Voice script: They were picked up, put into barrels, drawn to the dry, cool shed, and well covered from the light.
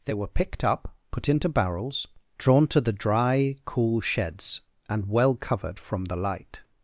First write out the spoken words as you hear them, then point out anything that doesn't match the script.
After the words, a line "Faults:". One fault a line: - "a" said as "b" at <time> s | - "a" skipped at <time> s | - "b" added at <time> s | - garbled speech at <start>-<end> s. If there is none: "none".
They were picked up, put into barrels, drawn to the dry, cool sheds, and well covered from the light.
Faults:
- "shed" said as "sheds" at 4.0 s